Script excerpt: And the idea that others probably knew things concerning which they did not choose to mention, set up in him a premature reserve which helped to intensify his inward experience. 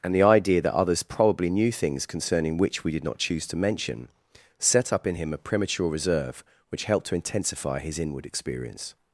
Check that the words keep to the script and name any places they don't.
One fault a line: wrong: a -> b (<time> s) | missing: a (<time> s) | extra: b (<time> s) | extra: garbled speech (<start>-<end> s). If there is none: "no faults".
wrong: they -> we (2.8 s)